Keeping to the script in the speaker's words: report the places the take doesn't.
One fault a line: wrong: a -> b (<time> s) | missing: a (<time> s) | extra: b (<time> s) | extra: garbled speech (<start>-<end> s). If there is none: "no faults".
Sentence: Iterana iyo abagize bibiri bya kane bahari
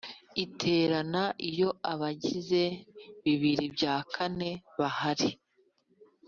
no faults